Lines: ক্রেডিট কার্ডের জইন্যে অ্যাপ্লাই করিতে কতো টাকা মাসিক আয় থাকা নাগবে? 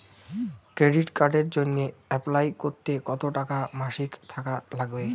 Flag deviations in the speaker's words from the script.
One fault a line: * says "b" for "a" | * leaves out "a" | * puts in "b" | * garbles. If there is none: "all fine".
* leaves out "আয়"